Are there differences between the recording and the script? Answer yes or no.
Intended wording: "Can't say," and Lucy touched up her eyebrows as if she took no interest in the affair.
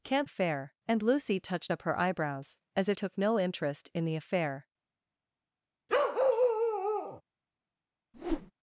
yes